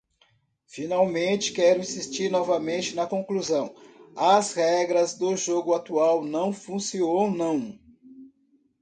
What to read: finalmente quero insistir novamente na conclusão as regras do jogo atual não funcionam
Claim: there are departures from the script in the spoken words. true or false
false